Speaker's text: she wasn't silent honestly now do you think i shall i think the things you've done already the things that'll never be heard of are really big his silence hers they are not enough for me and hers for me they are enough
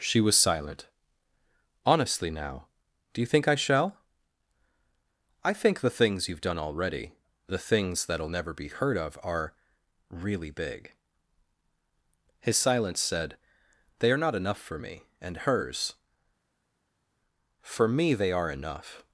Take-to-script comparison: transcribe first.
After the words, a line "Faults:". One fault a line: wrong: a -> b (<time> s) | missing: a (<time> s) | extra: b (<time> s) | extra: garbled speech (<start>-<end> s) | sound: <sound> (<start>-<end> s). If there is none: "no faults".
she was silent honestly now do you think i shall i think the things you've done already the things that'll never be heard of are really big his silence said they are not enough for me and hers for me they are enough
Faults:
wrong: wasn't -> was (0.2 s)
wrong: hers -> said (13.0 s)